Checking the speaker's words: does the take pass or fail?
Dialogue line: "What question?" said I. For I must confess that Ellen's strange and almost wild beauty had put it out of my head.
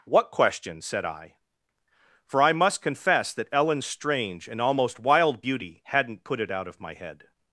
fail